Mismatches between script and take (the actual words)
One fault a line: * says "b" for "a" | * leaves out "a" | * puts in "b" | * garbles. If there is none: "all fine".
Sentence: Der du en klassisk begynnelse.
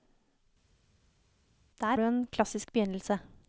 all fine